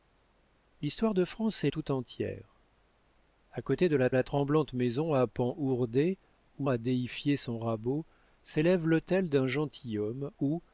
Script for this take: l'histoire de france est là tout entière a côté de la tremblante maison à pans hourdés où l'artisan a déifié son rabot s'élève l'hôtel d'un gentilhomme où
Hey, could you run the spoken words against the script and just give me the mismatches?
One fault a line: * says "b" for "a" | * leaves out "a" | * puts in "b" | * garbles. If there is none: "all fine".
* leaves out "là"
* puts in "la"
* leaves out "l'artisan"